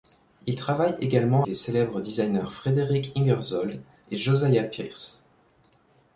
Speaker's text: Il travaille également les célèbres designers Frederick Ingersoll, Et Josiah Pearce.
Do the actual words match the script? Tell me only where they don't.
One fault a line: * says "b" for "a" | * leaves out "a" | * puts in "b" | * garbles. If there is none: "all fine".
all fine